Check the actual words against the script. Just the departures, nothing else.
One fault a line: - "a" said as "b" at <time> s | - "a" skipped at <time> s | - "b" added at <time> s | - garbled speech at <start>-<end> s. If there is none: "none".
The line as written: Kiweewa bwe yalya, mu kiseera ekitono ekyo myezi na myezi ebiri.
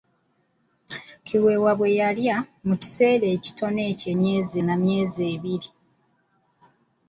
none